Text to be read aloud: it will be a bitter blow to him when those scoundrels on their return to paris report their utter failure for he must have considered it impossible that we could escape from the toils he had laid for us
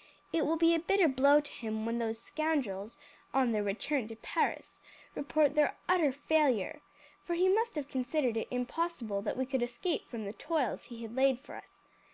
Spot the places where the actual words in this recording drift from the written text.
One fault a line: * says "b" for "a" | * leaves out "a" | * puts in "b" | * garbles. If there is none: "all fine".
all fine